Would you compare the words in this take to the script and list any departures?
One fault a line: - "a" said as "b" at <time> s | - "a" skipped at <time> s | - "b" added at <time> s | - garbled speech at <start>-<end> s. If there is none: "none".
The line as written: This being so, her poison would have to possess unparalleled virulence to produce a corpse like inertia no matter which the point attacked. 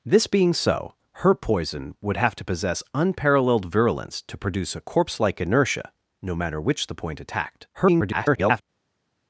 - garbled speech at 7.7-8.6 s